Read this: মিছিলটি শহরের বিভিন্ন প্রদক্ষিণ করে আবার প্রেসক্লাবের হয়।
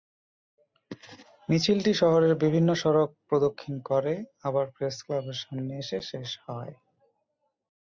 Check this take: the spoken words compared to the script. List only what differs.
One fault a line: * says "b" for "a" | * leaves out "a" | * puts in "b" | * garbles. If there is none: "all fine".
* puts in "সড়ক"
* puts in "সামনে এসে শেষ"